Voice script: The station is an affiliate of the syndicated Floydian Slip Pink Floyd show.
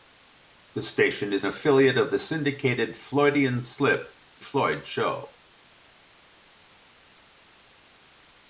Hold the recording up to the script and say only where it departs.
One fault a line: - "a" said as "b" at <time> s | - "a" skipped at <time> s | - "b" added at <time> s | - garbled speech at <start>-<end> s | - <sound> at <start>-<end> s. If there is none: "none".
- "an" skipped at 1.4 s
- "Pink" skipped at 4.2 s